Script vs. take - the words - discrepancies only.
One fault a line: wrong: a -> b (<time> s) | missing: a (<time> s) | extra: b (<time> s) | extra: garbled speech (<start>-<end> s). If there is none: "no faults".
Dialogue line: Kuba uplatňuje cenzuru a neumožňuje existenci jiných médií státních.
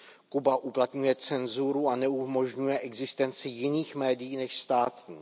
extra: než (4.4 s)